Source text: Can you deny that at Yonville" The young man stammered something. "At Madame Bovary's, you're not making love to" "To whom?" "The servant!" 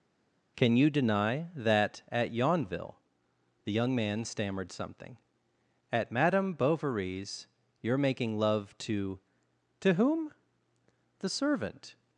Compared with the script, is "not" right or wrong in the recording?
wrong